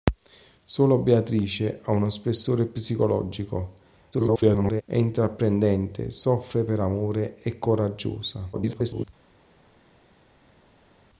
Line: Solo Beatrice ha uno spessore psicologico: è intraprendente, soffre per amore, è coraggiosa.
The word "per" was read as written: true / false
true